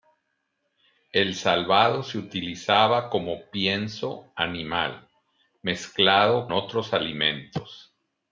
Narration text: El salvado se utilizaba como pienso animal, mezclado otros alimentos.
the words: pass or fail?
pass